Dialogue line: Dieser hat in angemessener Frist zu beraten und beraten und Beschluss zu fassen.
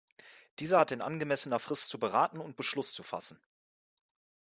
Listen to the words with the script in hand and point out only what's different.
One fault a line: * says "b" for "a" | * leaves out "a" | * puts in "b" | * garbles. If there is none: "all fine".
* leaves out "beraten und"